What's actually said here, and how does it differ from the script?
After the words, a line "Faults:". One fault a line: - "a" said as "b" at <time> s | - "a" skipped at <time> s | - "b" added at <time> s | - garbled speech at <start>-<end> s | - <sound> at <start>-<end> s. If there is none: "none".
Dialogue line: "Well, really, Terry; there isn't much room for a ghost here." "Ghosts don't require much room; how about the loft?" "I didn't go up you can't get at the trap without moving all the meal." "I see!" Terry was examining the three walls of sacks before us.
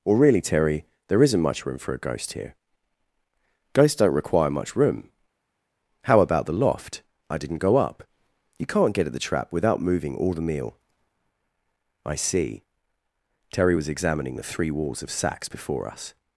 "Or, really, Terry; there isn't much room for a ghost here." "Ghosts don't require much room; how about the loft?" "I didn't go up you can't get at the trap without moving all the meal." "I see!" Terry was examining the three walls of sacks before us.
Faults:
- "Well" said as "Or" at 0.1 s